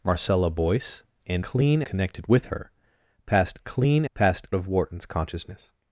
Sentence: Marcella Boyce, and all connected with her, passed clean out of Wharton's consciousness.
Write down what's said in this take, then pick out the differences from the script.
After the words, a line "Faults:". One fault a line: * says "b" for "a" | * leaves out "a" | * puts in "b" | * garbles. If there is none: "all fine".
Marcella Boyce, and clean connected with her, passed clean passed of Wharton's consciousness.
Faults:
* says "clean" for "all"
* says "passed" for "out"